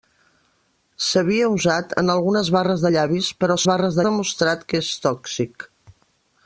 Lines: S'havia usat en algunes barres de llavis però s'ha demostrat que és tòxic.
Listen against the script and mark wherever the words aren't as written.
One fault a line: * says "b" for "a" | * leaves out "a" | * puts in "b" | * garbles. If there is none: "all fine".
* says "barres" for "s'ha"